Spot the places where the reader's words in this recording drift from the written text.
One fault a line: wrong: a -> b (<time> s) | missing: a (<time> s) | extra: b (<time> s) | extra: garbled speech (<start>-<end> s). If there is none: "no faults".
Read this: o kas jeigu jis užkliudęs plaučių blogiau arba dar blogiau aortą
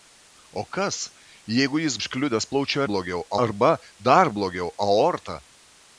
no faults